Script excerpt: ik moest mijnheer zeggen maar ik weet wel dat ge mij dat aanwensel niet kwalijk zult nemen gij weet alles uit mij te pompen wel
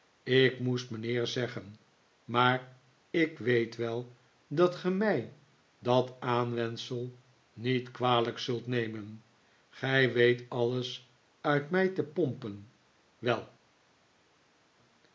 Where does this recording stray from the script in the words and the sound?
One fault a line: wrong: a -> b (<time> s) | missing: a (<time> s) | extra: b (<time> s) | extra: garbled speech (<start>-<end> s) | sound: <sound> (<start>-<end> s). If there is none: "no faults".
no faults